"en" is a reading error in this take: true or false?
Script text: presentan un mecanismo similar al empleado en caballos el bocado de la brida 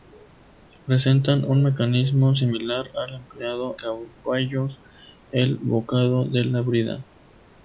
true